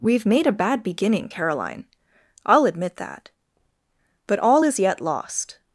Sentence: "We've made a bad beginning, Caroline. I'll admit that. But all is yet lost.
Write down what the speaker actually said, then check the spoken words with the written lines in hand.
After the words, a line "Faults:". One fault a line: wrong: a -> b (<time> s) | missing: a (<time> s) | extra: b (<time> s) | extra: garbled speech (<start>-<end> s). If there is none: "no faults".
"We've made a bad beginning, Caroline. I'll admit that. But all is yet lost.
Faults:
no faults